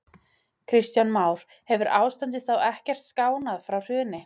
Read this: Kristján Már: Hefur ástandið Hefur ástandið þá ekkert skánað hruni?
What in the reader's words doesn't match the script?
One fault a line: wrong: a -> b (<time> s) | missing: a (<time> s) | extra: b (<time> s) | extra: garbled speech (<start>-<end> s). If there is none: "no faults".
missing: Hefur ástandið (2.5 s)
extra: frá (3.7 s)